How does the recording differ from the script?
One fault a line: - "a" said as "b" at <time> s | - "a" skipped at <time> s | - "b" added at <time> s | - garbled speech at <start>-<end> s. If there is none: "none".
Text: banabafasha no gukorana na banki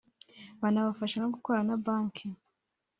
none